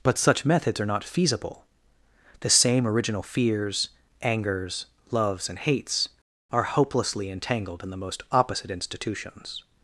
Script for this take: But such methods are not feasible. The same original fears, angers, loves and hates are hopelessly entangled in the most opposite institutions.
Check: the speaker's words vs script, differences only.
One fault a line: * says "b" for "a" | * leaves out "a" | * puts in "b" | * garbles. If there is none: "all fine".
all fine